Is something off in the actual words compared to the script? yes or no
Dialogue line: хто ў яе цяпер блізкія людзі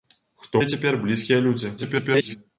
yes